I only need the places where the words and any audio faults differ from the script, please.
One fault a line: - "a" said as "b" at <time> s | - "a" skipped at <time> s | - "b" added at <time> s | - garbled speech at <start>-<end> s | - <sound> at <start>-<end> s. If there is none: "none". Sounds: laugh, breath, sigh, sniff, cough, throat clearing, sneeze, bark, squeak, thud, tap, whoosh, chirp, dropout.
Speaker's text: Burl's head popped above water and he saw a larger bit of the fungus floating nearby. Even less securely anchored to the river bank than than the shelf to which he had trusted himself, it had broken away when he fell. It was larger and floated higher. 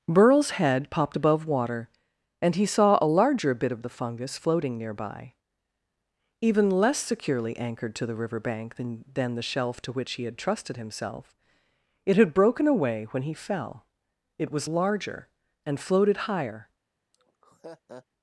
- laugh at 17.1-18.1 s